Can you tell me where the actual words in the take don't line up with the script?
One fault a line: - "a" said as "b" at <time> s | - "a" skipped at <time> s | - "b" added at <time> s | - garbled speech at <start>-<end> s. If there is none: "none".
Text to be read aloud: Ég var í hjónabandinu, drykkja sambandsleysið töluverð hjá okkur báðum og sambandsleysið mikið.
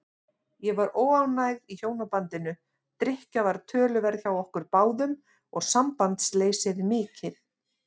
- "óánægð" added at 1.0 s
- "sambandsleysið" said as "var" at 3.5 s